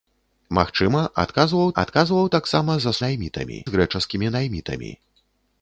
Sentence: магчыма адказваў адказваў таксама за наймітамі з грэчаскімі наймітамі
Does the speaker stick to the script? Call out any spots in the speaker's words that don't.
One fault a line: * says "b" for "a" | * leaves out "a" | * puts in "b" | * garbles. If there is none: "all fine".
all fine